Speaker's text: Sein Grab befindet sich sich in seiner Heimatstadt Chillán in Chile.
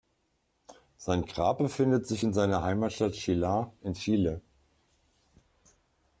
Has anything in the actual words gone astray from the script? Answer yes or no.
yes